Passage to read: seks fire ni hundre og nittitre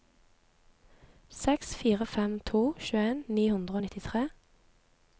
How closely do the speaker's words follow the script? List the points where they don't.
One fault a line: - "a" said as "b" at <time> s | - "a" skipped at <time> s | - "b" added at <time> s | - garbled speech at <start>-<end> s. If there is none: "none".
- "fem to tjueen" added at 2.1 s